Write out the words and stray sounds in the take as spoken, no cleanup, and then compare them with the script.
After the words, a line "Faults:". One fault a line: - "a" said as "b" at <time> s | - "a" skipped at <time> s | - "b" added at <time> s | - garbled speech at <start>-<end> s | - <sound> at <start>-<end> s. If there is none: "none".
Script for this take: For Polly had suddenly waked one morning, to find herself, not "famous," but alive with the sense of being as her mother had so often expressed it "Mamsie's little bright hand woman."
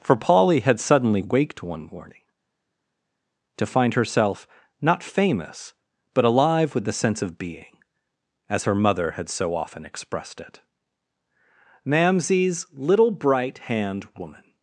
For Polly had suddenly waked one morning, to find herself, not "famous," but alive with the sense of being as her mother had so often expressed it "Mamsie's little bright hand woman."
Faults:
none